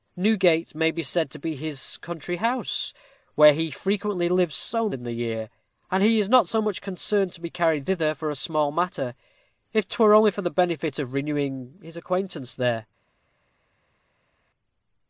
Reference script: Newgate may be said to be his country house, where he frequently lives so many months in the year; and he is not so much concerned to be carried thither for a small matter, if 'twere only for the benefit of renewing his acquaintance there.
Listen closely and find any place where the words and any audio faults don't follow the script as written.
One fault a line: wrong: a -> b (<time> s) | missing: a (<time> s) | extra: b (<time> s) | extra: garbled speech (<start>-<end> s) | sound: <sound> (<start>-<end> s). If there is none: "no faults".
missing: many months (4.9 s)